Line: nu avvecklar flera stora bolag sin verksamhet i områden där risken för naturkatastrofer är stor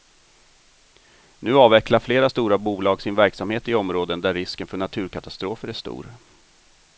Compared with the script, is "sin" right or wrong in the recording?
right